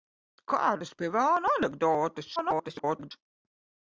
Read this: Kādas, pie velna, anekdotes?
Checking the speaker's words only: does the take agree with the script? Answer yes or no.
no